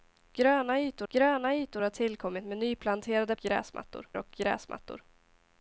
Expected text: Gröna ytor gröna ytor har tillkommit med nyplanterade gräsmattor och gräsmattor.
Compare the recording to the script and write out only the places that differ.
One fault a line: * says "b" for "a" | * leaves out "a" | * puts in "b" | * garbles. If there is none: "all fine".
all fine